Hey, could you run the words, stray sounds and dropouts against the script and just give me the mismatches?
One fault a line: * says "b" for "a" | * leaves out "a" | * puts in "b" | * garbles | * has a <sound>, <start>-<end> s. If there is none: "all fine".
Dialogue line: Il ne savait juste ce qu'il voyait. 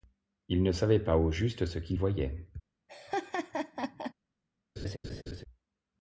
* puts in "pas au"
* has a laugh, 2.9-4.1 s
* has a laugh, 4.8-5.4 s